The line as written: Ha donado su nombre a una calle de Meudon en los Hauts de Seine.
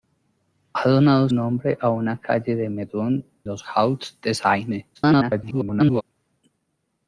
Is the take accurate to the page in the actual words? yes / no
no